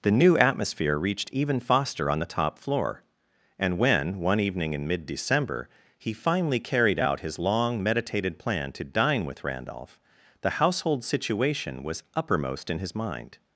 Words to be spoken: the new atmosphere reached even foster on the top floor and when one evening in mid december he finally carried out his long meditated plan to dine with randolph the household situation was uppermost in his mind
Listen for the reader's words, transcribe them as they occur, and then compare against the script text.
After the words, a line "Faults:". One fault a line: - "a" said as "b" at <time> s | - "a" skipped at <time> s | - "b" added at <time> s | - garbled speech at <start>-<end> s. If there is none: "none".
the new atmosphere reached even foster on the top floor and when one evening in mid december he finally carried out his long meditated plan to dine with randolph the household situation was uppermost in his mind
Faults:
none